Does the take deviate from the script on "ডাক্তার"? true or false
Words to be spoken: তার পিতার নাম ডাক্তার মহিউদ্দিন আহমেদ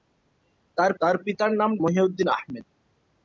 true